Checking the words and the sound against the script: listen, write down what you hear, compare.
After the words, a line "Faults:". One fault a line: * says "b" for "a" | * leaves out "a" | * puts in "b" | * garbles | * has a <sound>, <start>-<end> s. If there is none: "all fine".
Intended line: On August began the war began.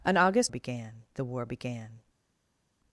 On August began the war began.
Faults:
all fine